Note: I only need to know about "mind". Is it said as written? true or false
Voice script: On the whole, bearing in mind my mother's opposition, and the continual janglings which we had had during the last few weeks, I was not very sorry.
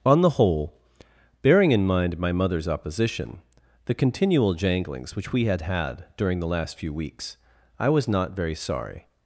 true